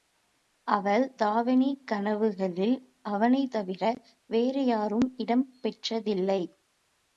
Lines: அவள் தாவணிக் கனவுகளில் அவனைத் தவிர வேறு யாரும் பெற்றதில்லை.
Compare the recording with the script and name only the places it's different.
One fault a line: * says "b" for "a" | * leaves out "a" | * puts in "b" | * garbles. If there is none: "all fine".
* puts in "இடம்"